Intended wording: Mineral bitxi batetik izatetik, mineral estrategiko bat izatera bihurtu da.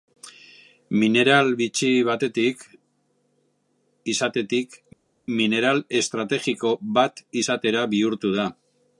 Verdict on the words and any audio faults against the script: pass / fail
pass